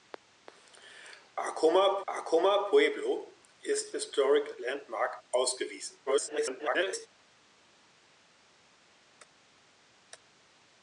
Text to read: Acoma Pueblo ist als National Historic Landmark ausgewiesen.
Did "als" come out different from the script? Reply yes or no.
yes